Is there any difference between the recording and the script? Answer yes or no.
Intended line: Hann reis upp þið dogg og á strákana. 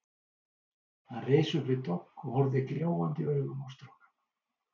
yes